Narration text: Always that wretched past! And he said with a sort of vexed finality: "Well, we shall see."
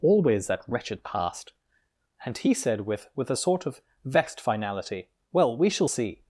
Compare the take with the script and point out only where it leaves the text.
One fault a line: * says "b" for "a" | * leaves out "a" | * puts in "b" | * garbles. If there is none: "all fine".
* puts in "with"